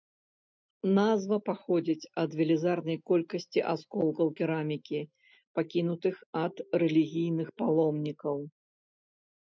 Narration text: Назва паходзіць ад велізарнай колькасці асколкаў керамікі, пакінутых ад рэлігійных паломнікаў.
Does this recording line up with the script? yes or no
yes